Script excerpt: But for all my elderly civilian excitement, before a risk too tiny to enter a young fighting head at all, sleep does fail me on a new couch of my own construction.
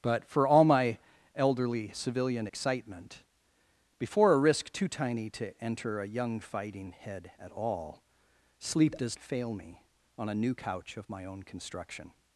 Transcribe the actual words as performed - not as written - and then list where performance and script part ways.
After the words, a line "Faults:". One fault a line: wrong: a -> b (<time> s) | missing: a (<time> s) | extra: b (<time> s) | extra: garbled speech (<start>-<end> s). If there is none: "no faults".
But for all my elderly civilian excitement, before a risk too tiny to enter a young fighting head at all, sleep does fail me on a new couch of my own construction.
Faults:
no faults